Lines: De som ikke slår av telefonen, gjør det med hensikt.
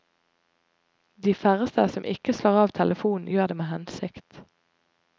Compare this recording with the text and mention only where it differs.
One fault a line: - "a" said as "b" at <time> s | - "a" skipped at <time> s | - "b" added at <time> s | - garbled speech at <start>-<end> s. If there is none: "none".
- "færreste" added at 1.4 s